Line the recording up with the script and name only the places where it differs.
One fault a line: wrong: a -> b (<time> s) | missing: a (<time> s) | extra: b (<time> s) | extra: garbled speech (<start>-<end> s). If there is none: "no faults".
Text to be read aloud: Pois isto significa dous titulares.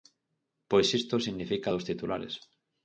no faults